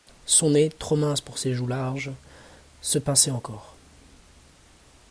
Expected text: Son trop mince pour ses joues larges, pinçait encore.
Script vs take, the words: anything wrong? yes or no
yes